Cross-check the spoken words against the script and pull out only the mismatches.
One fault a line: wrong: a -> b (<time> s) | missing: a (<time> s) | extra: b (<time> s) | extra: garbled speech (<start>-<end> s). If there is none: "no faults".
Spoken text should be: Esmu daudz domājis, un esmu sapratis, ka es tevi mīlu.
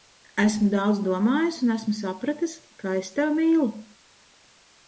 no faults